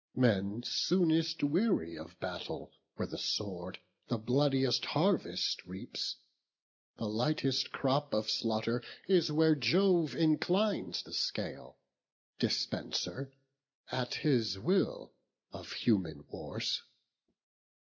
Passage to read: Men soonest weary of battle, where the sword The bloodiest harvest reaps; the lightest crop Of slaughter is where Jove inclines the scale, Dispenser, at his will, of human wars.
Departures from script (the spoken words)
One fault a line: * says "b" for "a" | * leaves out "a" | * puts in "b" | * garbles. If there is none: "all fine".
all fine